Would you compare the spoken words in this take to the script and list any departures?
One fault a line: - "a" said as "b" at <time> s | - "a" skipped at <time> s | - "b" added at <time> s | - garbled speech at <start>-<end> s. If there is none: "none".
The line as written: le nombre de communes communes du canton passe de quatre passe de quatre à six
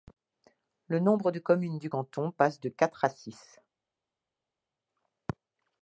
- "communes" skipped at 1.8 s
- "passe de quatre" skipped at 3.0 s